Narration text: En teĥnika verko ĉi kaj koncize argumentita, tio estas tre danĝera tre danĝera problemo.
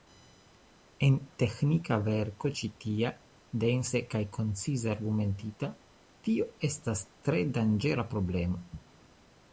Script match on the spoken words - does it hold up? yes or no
no